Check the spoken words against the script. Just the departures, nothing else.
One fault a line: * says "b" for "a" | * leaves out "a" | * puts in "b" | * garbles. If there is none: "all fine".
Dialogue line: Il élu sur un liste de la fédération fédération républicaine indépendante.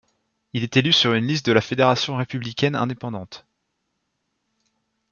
* puts in "est"
* says "une" for "un"
* leaves out "fédération"